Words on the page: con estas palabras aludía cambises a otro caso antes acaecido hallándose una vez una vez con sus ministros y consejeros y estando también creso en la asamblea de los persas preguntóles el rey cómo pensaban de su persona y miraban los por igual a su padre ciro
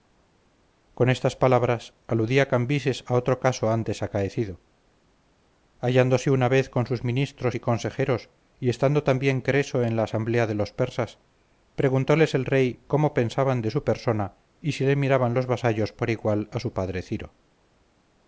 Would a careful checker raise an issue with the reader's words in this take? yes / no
yes